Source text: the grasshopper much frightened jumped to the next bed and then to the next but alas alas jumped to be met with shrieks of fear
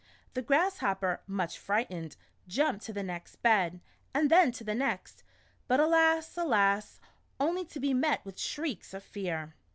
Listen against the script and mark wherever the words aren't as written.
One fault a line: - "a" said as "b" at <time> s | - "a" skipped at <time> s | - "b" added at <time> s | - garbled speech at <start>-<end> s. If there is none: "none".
- "jumped" said as "only" at 7.4 s